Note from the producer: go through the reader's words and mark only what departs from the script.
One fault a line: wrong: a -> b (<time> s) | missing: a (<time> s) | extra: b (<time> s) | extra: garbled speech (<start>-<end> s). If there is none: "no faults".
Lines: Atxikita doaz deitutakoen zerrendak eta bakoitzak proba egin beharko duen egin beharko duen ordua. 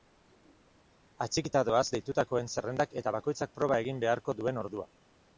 missing: egin beharko duen (4.6 s)